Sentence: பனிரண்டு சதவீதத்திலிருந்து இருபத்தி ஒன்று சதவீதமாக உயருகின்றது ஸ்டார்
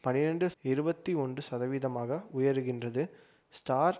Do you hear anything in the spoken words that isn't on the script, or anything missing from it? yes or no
yes